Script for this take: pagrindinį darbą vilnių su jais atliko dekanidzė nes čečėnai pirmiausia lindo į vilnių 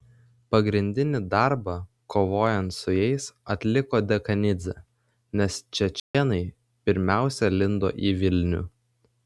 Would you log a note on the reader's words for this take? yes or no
yes